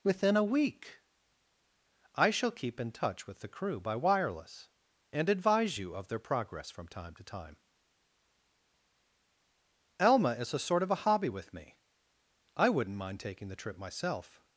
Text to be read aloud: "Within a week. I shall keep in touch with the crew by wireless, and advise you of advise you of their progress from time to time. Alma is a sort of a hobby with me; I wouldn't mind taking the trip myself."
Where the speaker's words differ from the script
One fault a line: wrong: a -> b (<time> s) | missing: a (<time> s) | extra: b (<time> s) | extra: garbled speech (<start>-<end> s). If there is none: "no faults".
missing: advise you of (6.1 s)